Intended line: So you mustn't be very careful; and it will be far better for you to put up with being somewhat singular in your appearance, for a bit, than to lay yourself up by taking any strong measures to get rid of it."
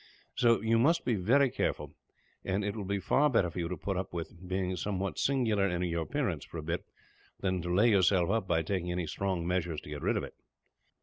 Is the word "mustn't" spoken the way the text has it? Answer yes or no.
no